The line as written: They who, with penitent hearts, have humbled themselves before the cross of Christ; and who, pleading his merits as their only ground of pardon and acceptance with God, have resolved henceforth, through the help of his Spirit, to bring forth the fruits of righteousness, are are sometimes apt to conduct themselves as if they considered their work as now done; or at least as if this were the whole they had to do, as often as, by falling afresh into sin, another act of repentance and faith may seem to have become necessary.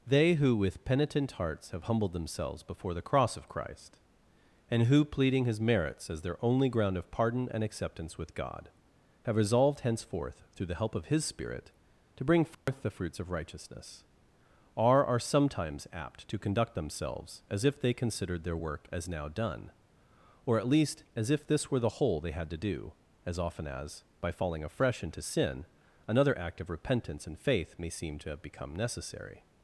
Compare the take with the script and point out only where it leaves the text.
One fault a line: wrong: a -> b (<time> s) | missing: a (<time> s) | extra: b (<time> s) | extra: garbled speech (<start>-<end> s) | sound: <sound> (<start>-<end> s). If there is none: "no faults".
sound: dropout (12.5-12.7 s)